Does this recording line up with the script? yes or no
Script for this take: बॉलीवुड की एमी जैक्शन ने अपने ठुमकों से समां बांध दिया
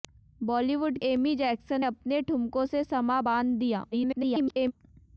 no